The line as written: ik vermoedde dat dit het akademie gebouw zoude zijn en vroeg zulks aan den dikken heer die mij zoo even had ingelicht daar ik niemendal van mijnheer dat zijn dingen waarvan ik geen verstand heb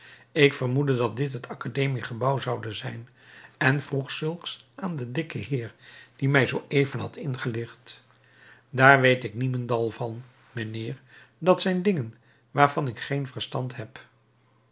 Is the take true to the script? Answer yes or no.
no